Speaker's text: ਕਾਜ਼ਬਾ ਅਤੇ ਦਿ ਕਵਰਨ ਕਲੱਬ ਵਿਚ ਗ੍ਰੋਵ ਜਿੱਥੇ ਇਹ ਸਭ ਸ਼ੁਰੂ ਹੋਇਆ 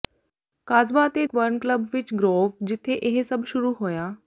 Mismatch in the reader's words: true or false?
true